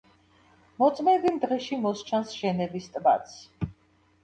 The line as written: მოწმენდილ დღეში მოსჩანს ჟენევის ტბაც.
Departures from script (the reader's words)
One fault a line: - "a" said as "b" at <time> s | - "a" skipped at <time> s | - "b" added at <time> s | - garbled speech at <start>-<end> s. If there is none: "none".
none